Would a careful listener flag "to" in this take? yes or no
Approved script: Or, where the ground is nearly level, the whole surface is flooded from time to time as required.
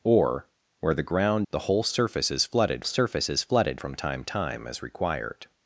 yes